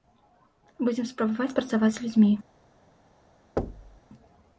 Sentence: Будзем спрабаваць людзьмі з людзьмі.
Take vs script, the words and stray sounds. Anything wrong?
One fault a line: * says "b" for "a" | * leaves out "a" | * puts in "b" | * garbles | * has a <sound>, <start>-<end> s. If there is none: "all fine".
* says "працаваць" for "людзьмі"
* has a thud, 3.6-4.0 s